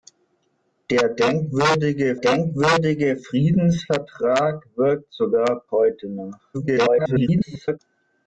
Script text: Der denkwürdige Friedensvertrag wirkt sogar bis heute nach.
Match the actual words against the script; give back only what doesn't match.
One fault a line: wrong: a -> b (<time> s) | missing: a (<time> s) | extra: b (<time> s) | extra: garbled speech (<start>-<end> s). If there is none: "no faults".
extra: denkwürdige (2.1 s)
missing: bis (5.6 s)
extra: garbled speech (6.5-7.8 s)